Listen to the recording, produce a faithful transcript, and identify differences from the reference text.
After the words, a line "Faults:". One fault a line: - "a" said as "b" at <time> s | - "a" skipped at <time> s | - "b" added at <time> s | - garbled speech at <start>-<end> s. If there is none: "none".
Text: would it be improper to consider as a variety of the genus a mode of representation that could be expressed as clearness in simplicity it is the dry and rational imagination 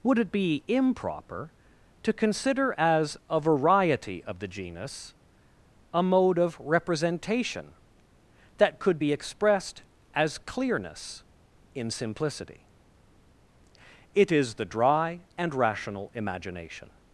would it be improper to consider as a variety of the genus a mode of representation that could be expressed as clearness in simplicity it is the dry and rational imagination
Faults:
none